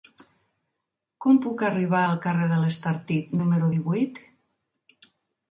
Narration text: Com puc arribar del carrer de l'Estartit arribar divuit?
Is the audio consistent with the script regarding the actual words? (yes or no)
no